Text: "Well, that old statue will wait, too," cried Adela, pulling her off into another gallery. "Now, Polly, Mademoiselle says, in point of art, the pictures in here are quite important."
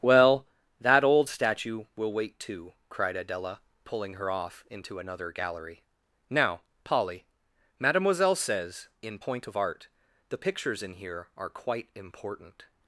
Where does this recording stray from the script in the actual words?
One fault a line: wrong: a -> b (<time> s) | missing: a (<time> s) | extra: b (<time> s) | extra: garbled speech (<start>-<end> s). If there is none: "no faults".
no faults